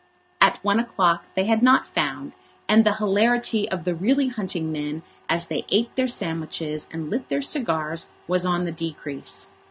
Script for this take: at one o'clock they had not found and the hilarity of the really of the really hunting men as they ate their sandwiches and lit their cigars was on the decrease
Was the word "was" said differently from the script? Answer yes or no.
no